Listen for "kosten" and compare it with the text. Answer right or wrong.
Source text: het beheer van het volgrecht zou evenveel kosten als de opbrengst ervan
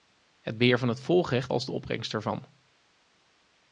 wrong